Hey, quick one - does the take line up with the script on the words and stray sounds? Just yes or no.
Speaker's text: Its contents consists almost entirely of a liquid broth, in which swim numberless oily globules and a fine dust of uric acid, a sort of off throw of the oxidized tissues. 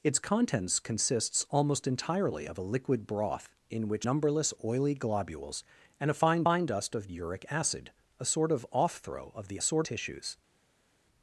no